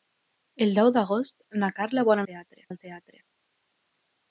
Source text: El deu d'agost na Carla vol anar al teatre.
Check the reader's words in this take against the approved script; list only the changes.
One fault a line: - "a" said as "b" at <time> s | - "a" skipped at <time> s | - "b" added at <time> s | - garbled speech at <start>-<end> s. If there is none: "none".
- "anar" said as "teatre" at 2.3 s